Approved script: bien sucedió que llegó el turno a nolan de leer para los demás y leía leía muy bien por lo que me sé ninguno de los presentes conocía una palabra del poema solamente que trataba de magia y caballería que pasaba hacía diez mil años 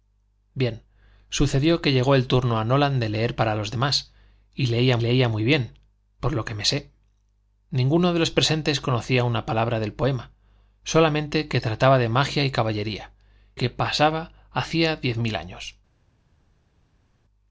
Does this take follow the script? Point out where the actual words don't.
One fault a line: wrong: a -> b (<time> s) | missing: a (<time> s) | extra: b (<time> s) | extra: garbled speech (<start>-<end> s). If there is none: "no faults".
no faults